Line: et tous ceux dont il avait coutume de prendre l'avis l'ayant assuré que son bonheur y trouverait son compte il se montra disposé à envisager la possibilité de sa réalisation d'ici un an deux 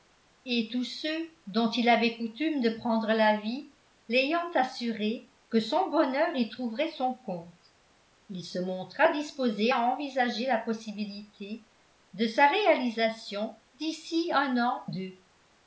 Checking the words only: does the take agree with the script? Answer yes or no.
yes